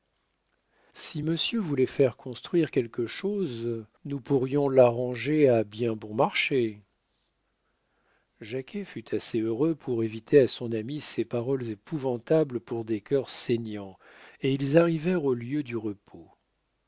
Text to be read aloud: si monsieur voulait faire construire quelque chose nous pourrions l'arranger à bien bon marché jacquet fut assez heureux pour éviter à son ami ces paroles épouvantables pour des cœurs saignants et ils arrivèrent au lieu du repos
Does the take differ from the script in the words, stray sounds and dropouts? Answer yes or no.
no